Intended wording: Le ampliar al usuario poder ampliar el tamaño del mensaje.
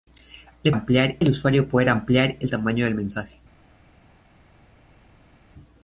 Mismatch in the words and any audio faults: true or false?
false